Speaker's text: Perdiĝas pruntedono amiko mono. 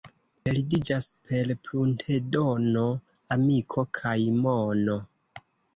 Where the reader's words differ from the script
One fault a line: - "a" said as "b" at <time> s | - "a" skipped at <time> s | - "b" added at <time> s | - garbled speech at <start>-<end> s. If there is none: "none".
- "per" added at 1.3 s
- "kaj" added at 4.0 s